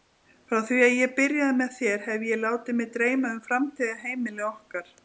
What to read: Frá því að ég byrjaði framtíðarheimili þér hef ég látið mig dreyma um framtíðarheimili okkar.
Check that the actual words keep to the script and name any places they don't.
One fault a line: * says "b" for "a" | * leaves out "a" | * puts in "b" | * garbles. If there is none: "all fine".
* says "með" for "framtíðarheimili"